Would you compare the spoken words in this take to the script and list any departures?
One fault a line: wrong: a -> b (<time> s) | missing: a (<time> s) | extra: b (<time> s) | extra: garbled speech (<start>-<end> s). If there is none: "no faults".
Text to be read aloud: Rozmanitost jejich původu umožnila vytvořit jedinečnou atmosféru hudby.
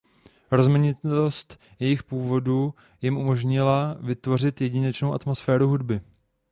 extra: jim (3.0 s)